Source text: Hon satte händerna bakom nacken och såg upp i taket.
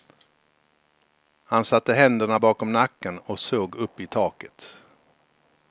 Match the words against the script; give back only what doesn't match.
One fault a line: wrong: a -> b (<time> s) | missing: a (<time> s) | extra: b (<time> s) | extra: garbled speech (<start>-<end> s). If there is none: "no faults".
wrong: Hon -> Han (1.4 s)